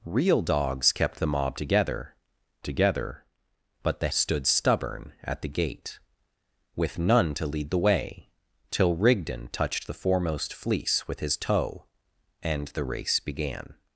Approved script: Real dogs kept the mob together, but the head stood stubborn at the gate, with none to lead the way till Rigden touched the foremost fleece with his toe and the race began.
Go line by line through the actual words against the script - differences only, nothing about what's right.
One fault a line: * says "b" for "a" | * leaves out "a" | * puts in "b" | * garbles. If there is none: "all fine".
* puts in "together"
* leaves out "head"